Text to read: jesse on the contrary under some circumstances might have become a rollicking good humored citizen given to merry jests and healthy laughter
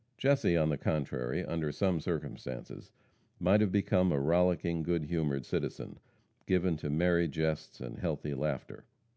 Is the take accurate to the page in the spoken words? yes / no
yes